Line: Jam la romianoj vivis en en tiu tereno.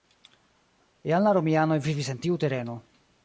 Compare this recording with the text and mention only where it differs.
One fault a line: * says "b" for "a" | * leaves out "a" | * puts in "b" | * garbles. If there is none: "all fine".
* leaves out "en"